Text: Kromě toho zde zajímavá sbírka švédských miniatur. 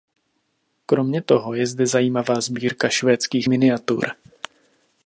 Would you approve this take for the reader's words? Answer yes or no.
no